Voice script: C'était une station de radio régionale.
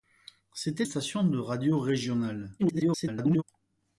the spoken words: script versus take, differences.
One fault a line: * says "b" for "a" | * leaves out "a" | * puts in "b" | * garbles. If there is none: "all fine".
* leaves out "une"
* garbles